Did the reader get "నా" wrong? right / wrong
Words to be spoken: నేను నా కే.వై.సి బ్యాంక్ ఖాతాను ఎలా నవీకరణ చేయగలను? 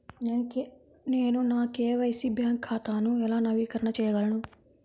right